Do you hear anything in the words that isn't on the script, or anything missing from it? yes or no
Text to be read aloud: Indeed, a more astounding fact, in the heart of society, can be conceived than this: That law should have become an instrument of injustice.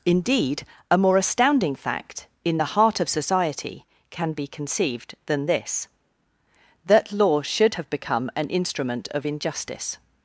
no